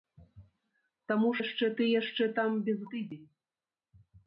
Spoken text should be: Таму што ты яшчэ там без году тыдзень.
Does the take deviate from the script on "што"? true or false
true